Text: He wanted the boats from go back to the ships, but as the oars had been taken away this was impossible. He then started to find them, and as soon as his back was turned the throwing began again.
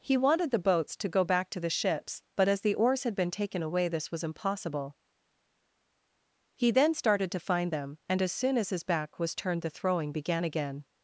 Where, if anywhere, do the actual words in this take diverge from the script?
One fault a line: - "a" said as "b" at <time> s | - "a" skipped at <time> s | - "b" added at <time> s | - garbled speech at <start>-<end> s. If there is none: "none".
- "from" said as "to" at 1.0 s